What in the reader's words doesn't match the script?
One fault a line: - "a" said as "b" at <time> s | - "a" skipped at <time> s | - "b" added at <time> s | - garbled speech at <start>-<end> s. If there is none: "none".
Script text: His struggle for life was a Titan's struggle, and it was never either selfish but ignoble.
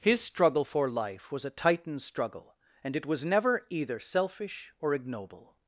- "but" said as "or" at 4.8 s